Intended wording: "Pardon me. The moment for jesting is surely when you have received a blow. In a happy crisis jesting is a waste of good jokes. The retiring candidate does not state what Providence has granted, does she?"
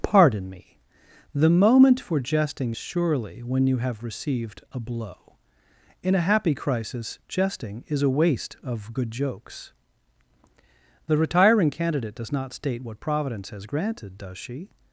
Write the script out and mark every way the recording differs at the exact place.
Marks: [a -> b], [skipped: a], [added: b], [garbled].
"Pardon me. The moment for jesting [skipped: is] surely when you have received a blow. In a happy crisis jesting is a waste of good jokes. The retiring candidate does not state what Providence has granted, does she?"